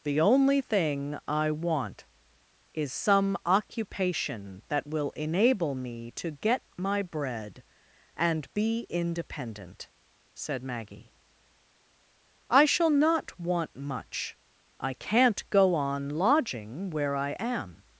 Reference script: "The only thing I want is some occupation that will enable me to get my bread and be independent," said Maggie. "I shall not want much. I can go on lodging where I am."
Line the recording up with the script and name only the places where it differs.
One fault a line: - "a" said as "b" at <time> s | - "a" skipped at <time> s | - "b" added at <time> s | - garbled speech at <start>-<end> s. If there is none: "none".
- "can" said as "can't" at 14.9 s